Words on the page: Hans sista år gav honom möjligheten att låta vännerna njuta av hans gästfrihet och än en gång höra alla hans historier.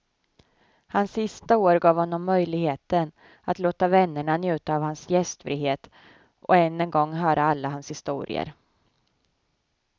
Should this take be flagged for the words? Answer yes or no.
no